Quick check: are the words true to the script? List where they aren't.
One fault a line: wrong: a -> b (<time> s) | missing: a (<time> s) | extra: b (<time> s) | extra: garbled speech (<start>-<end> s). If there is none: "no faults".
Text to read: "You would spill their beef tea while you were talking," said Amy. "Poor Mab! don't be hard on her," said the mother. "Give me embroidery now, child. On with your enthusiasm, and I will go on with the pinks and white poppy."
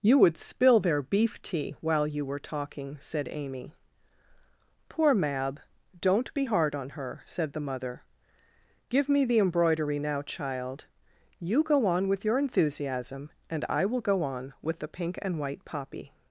extra: the (9.2 s)
extra: You go (11.4 s)
wrong: pinks -> pink (14.9 s)